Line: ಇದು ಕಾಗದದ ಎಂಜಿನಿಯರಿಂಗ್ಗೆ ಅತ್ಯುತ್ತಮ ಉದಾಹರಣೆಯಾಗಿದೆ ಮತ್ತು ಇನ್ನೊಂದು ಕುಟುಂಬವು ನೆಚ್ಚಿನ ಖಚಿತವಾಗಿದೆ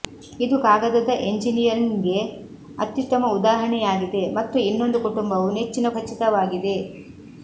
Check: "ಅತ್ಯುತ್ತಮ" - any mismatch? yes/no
no